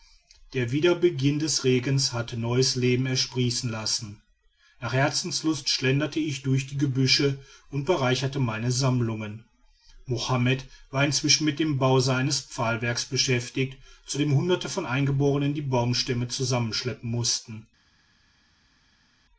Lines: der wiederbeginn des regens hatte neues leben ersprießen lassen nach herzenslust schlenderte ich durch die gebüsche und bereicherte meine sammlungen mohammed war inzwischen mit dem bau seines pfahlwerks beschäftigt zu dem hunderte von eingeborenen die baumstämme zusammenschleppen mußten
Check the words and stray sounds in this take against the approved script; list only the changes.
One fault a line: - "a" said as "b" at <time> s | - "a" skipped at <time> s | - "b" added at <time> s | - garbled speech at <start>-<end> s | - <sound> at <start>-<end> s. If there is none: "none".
none